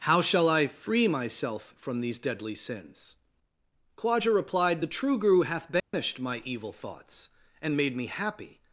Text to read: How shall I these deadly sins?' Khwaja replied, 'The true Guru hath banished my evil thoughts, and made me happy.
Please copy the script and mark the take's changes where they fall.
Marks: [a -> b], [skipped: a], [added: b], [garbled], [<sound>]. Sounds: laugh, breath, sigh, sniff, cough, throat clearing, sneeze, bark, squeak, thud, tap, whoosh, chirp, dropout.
How shall I [added: free myself from] these deadly sins?' Khwaja replied, 'The true Guru hath banished [dropout] my evil thoughts, and made me happy.